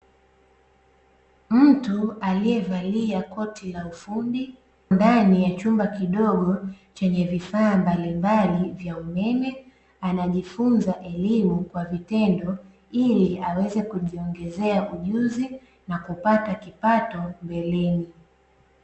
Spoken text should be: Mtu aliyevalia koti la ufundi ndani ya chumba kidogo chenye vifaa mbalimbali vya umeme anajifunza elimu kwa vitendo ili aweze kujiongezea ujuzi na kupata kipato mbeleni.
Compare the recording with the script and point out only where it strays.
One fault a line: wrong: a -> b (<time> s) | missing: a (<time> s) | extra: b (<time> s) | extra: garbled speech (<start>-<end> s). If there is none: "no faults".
no faults